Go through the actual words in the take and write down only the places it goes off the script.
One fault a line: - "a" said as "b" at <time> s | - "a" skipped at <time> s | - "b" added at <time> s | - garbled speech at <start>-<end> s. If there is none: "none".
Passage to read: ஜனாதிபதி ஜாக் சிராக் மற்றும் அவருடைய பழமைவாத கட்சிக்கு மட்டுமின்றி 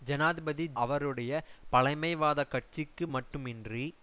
- "ஜாக் சிராக் மற்றும்" skipped at 0.7 s